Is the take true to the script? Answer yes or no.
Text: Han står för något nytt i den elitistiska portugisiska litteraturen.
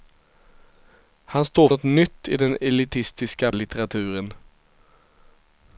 no